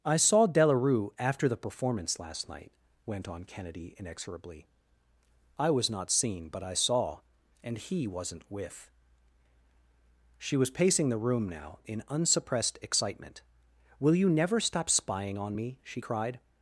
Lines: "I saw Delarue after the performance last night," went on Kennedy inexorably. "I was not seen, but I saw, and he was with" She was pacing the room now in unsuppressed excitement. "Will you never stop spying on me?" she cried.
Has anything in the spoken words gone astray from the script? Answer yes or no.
yes